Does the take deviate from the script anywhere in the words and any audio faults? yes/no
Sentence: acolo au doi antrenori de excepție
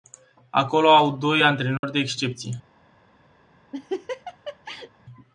yes